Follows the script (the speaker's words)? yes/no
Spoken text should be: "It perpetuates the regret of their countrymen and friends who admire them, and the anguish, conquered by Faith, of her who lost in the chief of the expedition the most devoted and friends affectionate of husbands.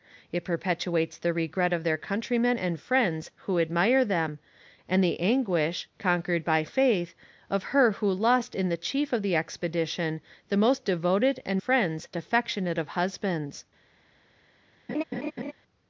yes